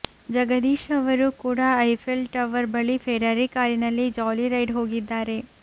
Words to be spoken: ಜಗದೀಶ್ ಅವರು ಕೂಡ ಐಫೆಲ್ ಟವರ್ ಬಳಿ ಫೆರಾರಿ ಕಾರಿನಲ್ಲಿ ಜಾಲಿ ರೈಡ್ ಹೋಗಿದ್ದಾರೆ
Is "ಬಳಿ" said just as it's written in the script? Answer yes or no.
yes